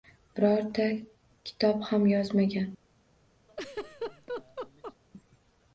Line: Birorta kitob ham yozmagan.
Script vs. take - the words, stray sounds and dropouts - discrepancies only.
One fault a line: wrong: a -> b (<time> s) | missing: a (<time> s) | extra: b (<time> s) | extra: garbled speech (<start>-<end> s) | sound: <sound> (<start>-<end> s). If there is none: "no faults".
sound: laugh (3.5-5.0 s)